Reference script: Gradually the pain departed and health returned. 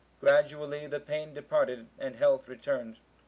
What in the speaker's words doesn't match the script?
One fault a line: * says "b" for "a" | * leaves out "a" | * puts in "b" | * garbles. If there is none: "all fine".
all fine